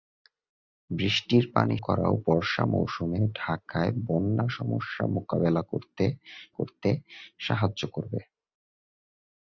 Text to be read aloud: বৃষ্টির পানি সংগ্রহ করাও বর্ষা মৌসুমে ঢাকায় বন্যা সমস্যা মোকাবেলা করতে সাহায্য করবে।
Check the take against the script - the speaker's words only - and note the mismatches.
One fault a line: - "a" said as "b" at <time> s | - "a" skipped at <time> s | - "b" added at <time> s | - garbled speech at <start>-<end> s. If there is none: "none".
- "সংগ্রহ" skipped at 1.8 s
- "করতে" added at 6.5 s